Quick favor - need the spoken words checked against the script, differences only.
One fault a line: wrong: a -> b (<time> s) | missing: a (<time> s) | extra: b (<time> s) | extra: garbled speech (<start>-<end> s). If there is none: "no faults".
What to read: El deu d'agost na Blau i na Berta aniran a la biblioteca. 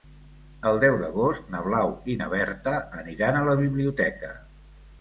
no faults